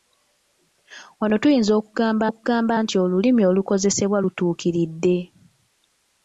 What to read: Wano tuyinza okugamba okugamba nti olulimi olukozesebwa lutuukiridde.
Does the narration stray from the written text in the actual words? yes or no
no